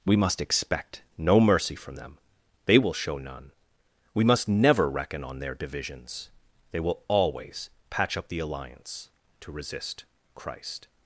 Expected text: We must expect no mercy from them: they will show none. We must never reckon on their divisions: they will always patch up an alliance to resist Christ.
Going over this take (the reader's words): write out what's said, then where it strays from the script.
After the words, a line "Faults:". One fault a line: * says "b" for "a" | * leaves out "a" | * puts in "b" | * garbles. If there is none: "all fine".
We must expect no mercy from them: they will show none. We must never reckon on their divisions: they will always patch up the alliance to resist Christ.
Faults:
* says "the" for "an"